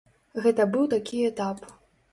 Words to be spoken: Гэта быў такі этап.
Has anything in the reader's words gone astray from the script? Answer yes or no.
no